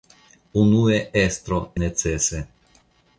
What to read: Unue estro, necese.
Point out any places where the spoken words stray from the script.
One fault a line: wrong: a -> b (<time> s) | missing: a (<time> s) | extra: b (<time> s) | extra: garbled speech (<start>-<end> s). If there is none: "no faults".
no faults